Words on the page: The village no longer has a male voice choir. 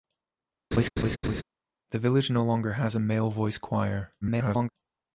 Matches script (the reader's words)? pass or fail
fail